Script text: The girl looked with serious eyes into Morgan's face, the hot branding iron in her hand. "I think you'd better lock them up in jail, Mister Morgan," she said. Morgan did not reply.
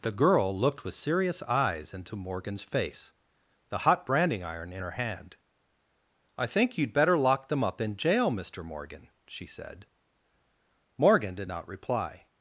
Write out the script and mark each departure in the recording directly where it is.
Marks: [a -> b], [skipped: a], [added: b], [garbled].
The girl looked with serious eyes into Morgan's face, the hot branding iron in her hand. "I think you'd better lock them up in jail, Mister Morgan," she said. Morgan did not reply.